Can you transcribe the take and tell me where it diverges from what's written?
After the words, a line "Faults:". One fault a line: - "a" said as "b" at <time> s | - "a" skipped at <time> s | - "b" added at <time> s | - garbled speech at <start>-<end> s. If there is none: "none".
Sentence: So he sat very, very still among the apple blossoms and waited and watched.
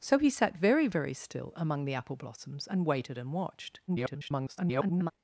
So he sat very, very still among the apple blossoms and waited and watched. [garbled]
Faults:
- garbled speech at 3.9-5.1 s